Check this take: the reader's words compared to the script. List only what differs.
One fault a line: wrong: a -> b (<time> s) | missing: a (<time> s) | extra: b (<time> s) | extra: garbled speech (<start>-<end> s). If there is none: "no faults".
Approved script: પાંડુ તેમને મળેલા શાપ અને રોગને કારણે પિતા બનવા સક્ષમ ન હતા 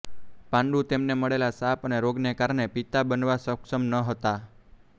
no faults